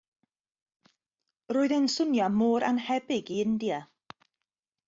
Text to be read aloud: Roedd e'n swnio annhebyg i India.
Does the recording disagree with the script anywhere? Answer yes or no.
yes